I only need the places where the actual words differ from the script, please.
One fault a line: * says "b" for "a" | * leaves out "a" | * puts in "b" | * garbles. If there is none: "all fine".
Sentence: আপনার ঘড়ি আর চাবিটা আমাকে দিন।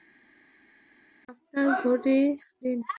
* leaves out "আর চাবিটা আমাকে"